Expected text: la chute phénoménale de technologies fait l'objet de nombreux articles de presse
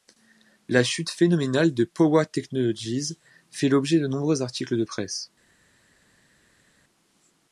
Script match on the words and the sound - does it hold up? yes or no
no